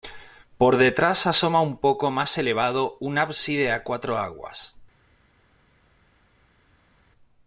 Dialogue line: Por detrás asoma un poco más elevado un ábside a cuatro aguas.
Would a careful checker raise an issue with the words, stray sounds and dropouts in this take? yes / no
no